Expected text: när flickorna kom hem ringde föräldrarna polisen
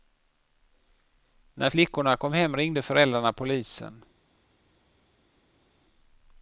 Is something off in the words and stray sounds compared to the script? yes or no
no